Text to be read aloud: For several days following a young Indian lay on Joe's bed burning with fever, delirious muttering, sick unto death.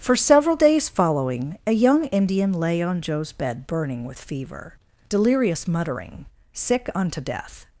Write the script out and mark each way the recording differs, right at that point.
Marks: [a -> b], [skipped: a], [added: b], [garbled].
For several days following a young Indian lay on Joe's bed burning with fever, delirious muttering, sick unto death.